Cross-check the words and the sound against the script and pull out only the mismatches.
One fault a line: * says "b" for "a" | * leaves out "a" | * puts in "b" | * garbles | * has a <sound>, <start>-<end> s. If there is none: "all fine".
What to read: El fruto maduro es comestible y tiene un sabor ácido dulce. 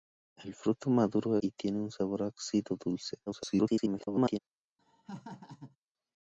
* leaves out "es comestible"
* garbles
* has a laugh, 4.8-5.8 s